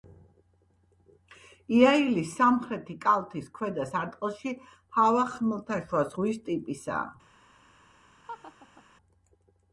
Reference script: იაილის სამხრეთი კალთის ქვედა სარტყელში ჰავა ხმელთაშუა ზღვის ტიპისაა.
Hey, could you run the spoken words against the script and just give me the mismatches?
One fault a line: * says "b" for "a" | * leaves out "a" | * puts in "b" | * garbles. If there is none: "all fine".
all fine